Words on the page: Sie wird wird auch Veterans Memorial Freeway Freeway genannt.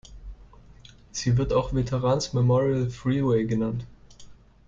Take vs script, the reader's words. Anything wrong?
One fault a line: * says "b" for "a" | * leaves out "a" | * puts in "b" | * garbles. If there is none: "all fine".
* leaves out "wird"
* leaves out "Freeway"